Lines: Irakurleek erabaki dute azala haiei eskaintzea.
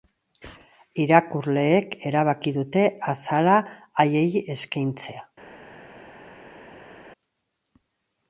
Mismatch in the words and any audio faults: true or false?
false